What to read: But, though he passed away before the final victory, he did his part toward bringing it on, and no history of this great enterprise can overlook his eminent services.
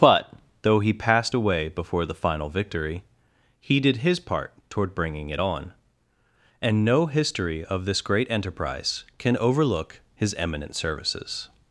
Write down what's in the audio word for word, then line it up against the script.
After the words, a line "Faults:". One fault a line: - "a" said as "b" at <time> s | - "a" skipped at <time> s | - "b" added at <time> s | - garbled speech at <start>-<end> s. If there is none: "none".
But, though he passed away before the final victory, he did his part toward bringing it on, and no history of this great enterprise can overlook his eminent services.
Faults:
none